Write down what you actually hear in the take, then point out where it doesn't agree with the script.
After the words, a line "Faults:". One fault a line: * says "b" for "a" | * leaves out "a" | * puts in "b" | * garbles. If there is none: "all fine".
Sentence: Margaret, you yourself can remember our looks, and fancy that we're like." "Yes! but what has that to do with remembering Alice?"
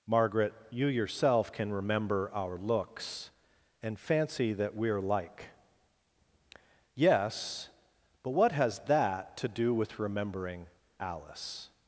Margaret, you yourself can remember our looks, and fancy that we're like." "Yes! but what has that to do with remembering Alice?"
Faults:
all fine